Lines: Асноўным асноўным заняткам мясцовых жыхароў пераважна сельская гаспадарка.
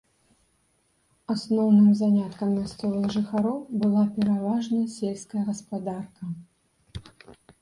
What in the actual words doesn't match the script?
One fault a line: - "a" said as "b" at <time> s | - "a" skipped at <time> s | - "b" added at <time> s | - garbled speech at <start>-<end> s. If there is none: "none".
- "асноўным" skipped at 1.9 s
- "была" added at 3.9 s